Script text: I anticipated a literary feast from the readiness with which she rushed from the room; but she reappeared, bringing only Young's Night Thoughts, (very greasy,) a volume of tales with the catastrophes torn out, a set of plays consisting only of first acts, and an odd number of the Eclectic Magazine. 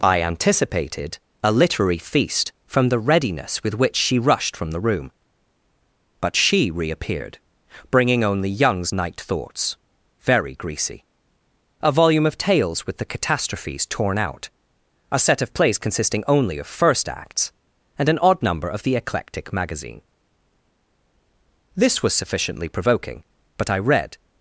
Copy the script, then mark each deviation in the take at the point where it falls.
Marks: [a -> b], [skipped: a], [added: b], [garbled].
I anticipated a literary feast from the readiness with which she rushed from the room; but she reappeared, bringing only Young's Night Thoughts, (very greasy,) a volume of tales with the catastrophes torn out, a set of plays consisting only of first acts, and an odd number of the Eclectic Magazine. [added: This was sufficiently provoking but I read]